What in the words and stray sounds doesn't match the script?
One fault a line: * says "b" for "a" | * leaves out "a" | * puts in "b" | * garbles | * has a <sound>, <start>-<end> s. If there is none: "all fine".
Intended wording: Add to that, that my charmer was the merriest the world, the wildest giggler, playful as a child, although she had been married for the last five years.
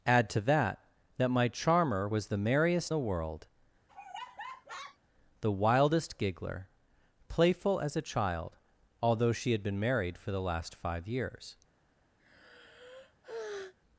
* has a laugh, 3.9-5.0 s
* has a sigh, 12.2-13.7 s